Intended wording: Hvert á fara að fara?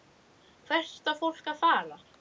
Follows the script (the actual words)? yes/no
no